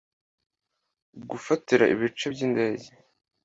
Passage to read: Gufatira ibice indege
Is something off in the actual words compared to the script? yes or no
yes